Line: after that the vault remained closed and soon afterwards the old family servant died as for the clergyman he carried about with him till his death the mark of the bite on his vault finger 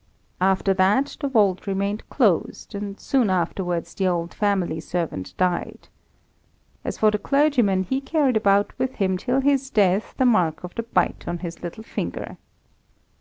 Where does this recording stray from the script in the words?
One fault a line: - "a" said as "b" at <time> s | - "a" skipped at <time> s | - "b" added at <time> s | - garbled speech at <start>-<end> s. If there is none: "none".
- "vault" said as "little" at 11.6 s